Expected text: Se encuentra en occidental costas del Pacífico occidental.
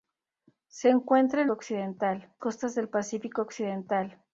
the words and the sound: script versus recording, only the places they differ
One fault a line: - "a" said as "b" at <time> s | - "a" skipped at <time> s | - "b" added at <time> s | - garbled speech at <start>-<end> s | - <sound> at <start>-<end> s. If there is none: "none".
none